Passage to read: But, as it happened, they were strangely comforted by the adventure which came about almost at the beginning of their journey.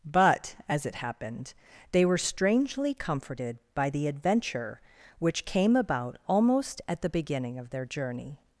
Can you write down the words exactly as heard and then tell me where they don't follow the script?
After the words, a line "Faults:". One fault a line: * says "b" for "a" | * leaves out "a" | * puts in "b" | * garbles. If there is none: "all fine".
But, as it happened, they were strangely comforted by the adventure which came about almost at the beginning of their journey.
Faults:
all fine